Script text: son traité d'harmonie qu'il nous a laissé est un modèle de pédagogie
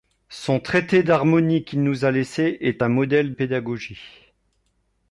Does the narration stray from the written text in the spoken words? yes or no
yes